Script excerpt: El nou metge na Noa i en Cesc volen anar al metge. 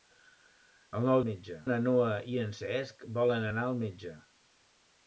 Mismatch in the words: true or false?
false